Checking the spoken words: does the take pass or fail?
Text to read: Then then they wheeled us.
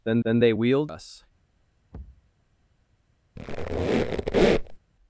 pass